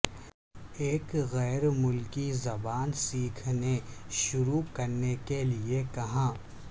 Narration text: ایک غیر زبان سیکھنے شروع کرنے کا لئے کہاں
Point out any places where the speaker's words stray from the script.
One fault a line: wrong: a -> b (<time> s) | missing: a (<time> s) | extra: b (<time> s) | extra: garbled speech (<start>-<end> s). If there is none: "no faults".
extra: ملکی (1.7 s)
wrong: کا -> کے (5.2 s)